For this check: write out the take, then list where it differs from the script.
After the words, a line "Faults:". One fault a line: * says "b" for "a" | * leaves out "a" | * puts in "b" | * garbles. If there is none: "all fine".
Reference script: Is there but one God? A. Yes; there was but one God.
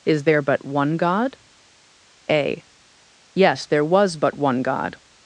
Is there but one God? A. Yes; there was but one God.
Faults:
all fine